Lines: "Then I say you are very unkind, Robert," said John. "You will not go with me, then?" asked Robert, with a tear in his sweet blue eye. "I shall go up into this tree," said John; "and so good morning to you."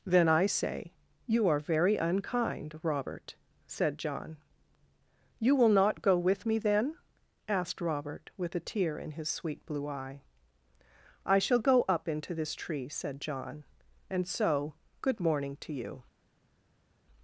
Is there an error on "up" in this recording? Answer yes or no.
no